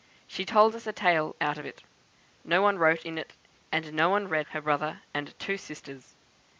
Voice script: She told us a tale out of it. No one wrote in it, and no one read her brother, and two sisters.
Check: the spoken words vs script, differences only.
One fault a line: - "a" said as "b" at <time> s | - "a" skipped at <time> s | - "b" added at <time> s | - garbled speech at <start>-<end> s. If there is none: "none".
none